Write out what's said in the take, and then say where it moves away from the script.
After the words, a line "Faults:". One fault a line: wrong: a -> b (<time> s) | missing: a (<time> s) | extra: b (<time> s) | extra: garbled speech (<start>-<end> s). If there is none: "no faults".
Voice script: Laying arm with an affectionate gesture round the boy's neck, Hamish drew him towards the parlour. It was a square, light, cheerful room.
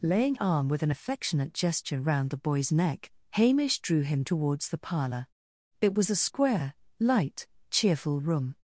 Laying arm with an affectionate gesture round the boy's neck, Hamish drew him towards the parlour. It was a square, light, cheerful room.
Faults:
no faults